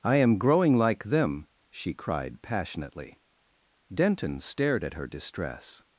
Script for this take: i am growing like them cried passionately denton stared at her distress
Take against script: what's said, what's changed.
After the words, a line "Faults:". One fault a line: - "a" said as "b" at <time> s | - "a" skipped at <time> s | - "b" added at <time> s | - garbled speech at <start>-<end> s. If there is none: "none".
i am growing like them she cried passionately denton stared at her distress
Faults:
- "she" added at 1.7 s